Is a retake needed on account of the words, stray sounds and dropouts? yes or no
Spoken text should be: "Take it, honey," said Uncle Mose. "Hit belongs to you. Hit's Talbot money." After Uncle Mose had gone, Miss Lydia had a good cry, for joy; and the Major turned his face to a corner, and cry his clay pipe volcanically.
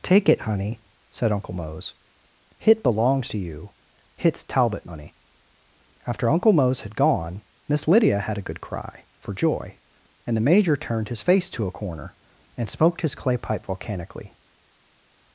yes